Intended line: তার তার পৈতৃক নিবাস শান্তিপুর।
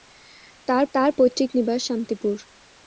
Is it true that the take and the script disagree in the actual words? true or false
false